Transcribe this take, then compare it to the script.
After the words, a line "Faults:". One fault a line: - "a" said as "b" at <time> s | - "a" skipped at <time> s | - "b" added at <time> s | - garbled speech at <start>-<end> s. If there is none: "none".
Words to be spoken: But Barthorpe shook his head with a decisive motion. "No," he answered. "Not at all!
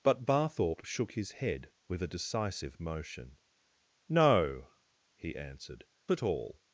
But Barthorpe shook his head with a decisive motion. "No," he answered. "At all!
Faults:
- "Not" skipped at 5.8 s